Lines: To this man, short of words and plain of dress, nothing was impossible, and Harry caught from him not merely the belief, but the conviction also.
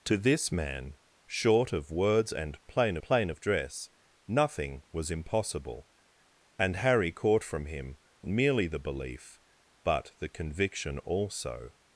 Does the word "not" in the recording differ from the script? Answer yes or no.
yes